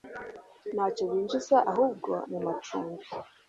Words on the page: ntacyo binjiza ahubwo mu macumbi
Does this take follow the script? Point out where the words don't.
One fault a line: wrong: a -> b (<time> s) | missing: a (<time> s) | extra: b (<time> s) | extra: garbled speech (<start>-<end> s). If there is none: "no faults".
no faults